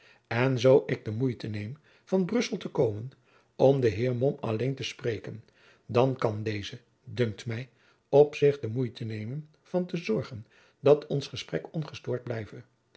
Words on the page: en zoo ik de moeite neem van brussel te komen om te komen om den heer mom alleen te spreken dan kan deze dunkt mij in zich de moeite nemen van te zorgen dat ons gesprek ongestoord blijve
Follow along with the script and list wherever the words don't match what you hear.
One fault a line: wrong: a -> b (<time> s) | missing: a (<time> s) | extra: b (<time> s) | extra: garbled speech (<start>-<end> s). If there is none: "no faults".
missing: te komen om (3.8 s)
wrong: in -> op (8.1 s)